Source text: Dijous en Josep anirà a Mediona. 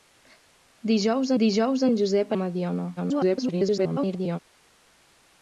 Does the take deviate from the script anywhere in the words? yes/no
yes